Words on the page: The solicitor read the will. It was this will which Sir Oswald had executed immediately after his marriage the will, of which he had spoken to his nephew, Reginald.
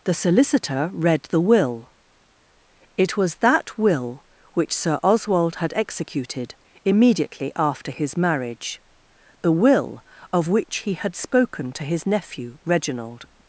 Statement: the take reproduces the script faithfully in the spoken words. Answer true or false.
false